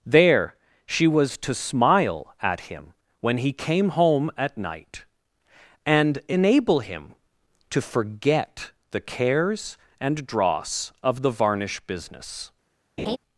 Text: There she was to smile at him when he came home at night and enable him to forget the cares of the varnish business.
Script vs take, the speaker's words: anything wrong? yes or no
yes